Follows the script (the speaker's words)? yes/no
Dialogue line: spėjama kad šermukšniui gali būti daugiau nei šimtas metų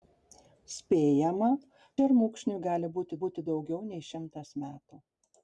no